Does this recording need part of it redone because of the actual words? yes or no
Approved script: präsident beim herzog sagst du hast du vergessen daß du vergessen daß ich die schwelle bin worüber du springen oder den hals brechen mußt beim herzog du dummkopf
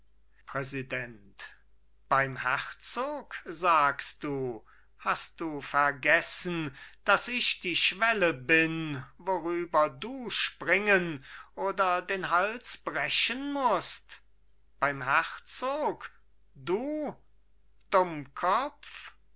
yes